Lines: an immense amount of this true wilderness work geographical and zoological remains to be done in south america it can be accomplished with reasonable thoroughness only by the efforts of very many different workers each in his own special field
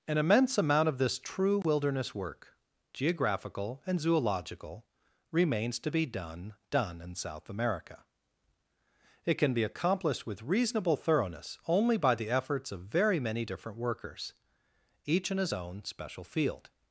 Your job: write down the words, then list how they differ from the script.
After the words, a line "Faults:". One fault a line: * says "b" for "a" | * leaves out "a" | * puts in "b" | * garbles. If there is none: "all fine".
an immense amount of this true wilderness work geographical and zoological remains to be done done in south america it can be accomplished with reasonable thoroughness only by the efforts of very many different workers each in his own special field
Faults:
* puts in "done"